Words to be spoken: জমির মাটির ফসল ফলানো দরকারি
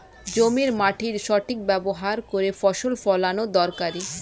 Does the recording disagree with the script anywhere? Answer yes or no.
yes